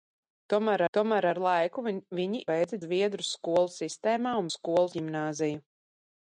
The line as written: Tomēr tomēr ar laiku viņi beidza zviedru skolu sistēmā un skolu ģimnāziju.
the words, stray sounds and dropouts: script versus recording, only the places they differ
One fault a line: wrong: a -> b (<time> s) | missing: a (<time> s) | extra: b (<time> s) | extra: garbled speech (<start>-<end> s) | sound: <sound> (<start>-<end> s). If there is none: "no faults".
no faults